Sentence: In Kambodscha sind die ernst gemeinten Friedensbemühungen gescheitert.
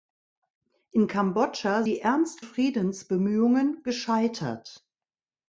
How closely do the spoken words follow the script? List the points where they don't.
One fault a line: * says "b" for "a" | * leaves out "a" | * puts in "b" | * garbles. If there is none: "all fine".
* leaves out "sind"
* leaves out "gemeinten"